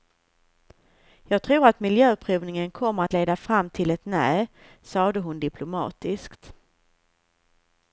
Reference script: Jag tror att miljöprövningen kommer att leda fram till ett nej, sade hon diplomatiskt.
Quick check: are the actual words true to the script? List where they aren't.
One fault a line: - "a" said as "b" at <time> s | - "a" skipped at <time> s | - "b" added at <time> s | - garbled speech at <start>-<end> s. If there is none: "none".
none